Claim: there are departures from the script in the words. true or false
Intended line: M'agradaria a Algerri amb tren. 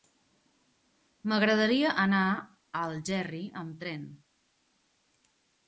true